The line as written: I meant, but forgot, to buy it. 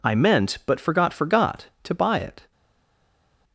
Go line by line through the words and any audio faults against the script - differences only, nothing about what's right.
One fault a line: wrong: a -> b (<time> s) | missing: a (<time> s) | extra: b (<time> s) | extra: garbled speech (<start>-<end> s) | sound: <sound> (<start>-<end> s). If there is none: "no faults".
extra: forgot (1.1 s)